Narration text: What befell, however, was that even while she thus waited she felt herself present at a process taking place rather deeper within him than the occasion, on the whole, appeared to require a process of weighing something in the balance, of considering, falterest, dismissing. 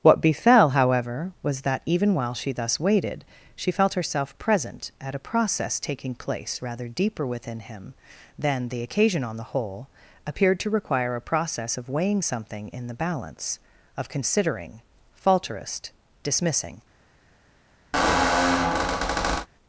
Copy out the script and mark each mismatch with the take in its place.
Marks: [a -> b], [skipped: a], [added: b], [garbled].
What befell, however, was that even while she thus waited she felt herself present at a process taking place rather deeper within him than the occasion, on the whole, appeared to require a process of weighing something in the balance, of considering, falterest, dismissing.